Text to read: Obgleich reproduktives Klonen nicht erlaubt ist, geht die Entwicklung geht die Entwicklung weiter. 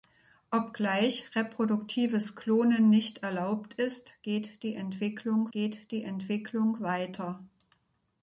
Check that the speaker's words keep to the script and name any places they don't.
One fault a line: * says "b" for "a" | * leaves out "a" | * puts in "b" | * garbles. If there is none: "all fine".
all fine